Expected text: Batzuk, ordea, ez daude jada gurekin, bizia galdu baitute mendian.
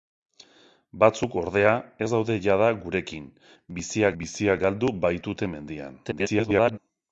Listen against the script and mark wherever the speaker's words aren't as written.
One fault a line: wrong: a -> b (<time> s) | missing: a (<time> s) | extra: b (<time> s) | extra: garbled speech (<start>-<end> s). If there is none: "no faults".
extra: bizia (4.2 s)
extra: garbled speech (6.0-6.8 s)